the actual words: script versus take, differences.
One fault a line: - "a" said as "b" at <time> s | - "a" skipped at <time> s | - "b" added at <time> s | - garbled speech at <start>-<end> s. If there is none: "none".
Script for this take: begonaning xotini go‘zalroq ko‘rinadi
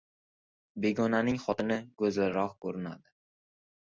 none